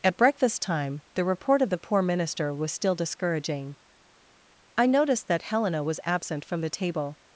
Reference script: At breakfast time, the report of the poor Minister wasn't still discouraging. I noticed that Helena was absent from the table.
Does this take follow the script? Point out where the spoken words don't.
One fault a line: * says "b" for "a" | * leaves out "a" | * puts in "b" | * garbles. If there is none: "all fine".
* says "was" for "wasn't"